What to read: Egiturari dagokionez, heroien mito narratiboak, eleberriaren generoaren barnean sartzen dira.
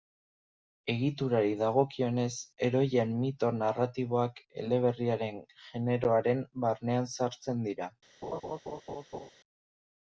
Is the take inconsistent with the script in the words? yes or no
no